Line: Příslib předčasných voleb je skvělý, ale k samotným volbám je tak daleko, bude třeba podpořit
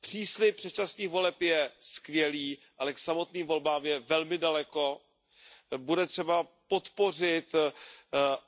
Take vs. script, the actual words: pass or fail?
fail